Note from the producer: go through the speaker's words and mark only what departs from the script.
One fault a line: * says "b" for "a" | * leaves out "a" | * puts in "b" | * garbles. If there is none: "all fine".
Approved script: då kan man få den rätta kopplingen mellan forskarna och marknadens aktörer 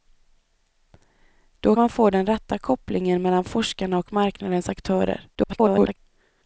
* leaves out "kan"
* garbles